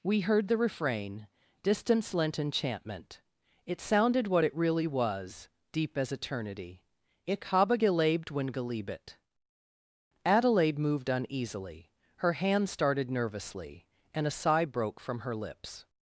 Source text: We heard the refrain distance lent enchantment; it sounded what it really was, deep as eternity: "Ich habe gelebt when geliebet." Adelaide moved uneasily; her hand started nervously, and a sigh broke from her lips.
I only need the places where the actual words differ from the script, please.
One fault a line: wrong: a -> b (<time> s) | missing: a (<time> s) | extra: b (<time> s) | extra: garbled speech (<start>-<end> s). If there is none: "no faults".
no faults